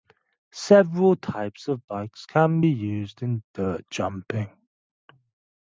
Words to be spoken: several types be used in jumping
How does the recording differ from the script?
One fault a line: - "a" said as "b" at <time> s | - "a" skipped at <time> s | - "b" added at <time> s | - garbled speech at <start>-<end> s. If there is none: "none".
- "of bikes can" added at 1.7 s
- "dirt" added at 3.6 s